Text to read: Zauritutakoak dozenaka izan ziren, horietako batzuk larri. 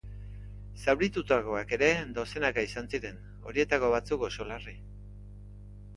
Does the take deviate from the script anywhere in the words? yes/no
yes